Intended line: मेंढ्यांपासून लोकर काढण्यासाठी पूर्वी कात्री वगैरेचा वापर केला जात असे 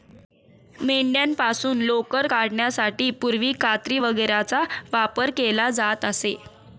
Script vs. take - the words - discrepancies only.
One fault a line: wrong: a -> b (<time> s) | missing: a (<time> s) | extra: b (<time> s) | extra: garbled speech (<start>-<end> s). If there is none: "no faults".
no faults